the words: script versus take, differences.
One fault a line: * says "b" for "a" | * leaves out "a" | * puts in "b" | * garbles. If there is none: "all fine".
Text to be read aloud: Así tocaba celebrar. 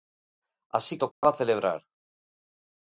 all fine